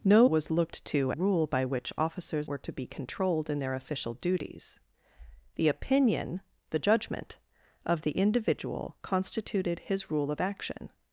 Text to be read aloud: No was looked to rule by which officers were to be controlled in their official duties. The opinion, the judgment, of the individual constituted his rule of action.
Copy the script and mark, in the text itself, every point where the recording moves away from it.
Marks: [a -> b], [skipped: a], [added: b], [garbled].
No was looked to rule by which officers were to be controlled in their official duties. The opinion, the judgment, of the individual constituted his rule of action.